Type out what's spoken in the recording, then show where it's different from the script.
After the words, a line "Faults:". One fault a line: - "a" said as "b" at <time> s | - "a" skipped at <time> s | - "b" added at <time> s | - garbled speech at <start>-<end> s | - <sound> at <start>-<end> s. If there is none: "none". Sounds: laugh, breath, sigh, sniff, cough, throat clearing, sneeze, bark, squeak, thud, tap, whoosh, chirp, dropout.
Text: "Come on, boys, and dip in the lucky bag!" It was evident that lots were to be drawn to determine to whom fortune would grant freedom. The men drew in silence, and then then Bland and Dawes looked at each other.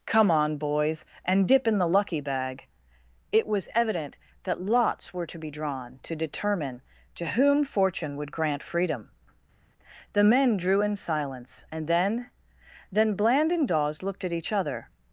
"Come on, boys, and dip in the lucky bag!" It was evident that lots were to be drawn to determine to whom fortune would grant freedom. The men drew in silence, and then then Bland and Dawes looked at each other.
Faults:
none